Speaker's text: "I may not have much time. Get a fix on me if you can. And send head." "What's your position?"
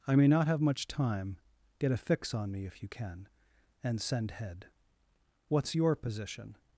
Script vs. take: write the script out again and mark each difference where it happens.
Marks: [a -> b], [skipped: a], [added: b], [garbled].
"I may not have much time. Get a fix on me if you can. And send head." "What's your position?"